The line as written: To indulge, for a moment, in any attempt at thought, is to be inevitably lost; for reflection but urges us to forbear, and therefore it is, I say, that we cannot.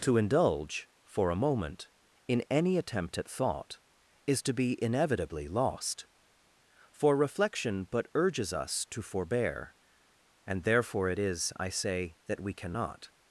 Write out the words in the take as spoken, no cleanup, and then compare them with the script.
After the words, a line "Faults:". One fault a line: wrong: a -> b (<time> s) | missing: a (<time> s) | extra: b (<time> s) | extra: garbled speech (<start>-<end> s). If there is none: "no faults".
To indulge, for a moment, in any attempt at thought, is to be inevitably lost; for reflection but urges us to forbear, and therefore it is, I say, that we cannot.
Faults:
no faults